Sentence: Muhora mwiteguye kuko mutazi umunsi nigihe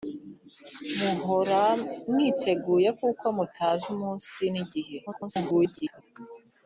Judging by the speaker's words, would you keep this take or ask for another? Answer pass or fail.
fail